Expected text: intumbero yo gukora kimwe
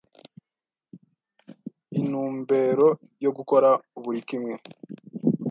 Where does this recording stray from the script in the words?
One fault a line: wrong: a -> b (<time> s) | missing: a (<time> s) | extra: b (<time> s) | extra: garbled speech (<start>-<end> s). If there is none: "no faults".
extra: buri (4.0 s)